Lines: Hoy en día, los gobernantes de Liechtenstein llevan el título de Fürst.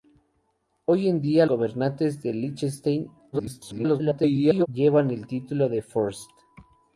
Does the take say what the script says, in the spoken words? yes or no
no